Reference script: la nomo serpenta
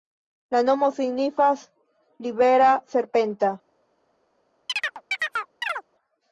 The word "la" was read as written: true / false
true